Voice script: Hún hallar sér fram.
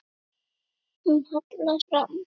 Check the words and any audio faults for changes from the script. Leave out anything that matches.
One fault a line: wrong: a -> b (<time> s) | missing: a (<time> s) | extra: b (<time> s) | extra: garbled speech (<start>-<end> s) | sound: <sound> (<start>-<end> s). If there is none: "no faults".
missing: sér (1.8 s)